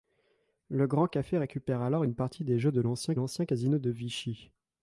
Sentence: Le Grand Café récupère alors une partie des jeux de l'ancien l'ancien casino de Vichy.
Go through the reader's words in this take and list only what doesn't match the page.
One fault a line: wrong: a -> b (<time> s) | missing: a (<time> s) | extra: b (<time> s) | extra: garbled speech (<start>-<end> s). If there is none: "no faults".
no faults